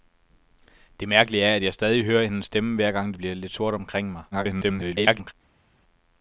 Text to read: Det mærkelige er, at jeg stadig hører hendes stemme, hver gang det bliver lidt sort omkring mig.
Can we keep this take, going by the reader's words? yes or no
no